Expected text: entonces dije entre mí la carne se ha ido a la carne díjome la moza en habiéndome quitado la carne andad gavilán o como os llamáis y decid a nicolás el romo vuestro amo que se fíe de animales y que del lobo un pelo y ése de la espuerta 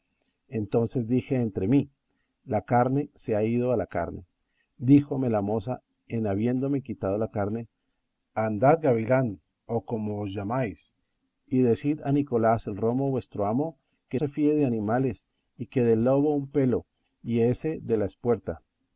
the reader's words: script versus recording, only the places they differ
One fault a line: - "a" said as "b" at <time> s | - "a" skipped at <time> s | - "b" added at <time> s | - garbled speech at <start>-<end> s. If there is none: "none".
none